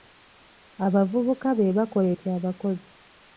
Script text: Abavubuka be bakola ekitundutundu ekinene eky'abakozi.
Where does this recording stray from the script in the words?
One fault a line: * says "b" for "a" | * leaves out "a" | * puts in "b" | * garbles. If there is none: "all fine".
* leaves out "ekitundutundu ekinene"